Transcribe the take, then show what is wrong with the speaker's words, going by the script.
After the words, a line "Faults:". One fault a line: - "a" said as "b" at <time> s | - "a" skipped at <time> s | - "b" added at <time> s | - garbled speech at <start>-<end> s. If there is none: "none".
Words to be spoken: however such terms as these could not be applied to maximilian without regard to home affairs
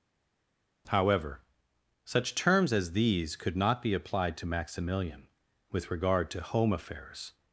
however such terms as these could not be applied to maximilian with regard to home affairs
Faults:
- "without" said as "with" at 5.7 s